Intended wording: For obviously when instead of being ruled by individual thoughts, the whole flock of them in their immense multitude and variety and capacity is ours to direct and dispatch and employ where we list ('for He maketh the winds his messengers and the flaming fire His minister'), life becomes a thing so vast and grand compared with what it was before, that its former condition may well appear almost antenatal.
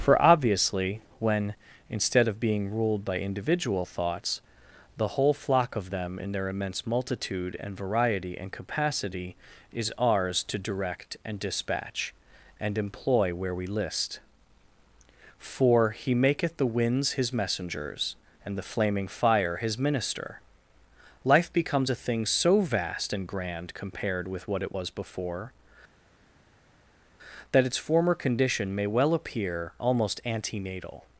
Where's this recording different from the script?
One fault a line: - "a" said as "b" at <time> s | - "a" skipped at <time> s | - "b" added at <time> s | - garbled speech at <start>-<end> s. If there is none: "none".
none